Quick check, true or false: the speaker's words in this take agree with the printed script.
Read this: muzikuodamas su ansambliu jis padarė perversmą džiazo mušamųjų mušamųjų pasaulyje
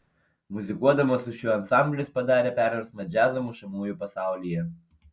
false